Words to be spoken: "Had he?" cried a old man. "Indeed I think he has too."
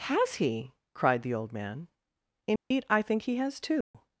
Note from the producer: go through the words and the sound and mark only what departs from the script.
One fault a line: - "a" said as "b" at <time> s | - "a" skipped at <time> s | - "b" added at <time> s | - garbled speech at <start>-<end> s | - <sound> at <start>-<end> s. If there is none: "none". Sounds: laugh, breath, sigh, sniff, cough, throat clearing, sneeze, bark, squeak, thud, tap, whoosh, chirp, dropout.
- "Had" said as "Has" at 0.1 s
- "a" said as "the" at 1.2 s
- dropout at 2.6-2.7 s
- dropout at 3.8-3.9 s